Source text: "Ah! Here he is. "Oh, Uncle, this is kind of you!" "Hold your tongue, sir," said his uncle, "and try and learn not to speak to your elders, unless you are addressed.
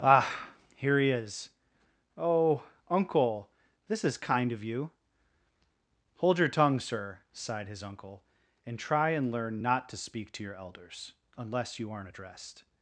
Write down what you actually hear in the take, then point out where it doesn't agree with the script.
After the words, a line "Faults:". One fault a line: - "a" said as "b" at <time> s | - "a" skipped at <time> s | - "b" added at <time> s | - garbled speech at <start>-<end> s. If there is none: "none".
"Ah! Here he is. "Oh, Uncle, this is kind of you!" "Hold your tongue, sir," sighed his uncle, "and try and learn not to speak to your elders, unless you aren't addressed.
Faults:
- "said" said as "sighed" at 7.3 s
- "are" said as "aren't" at 11.9 s